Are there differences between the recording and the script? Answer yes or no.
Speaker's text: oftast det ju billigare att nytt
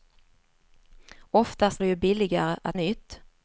no